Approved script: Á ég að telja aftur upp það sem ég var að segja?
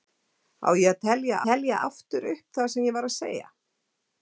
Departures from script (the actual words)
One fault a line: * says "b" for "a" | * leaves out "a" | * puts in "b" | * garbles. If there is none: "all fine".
* puts in "telja"